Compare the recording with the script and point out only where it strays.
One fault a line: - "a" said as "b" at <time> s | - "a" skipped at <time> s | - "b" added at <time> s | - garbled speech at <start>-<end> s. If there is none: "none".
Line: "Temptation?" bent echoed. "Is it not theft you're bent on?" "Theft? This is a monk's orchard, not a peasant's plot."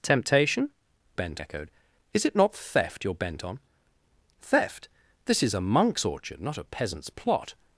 none